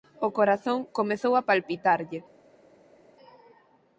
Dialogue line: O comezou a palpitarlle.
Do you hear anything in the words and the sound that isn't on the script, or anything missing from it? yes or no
yes